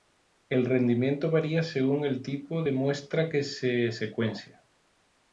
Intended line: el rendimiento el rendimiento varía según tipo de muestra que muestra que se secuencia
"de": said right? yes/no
yes